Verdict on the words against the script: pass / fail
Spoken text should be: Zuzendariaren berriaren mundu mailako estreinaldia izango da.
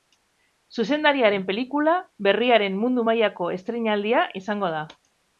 fail